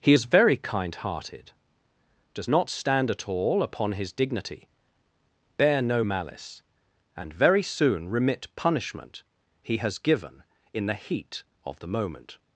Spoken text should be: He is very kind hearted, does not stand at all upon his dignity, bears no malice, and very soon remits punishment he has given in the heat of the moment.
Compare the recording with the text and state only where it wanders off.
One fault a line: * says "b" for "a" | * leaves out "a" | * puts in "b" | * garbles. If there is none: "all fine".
* says "bear" for "bears"
* says "remit" for "remits"